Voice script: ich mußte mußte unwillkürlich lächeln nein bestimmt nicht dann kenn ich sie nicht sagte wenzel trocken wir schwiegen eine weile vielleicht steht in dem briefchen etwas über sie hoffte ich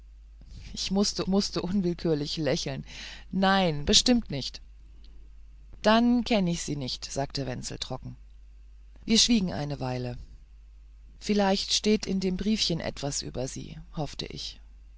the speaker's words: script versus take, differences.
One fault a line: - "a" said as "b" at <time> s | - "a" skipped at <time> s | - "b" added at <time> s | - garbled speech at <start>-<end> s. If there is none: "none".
none